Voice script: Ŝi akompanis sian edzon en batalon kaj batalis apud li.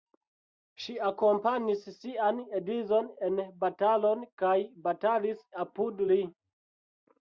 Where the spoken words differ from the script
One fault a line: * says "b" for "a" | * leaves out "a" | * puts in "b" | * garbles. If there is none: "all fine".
all fine